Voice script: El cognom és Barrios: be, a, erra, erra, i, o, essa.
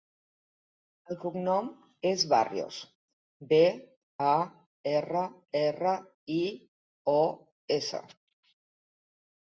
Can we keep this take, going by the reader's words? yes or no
yes